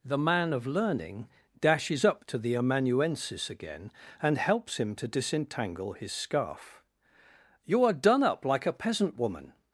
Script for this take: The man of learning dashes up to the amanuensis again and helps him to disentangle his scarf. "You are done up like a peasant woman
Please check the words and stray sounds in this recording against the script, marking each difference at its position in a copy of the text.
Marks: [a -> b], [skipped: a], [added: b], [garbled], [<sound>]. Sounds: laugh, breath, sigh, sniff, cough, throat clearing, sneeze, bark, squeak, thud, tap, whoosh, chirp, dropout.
The man of learning dashes up to the amanuensis again and helps him to disentangle his scarf. "You are done up like a peasant woman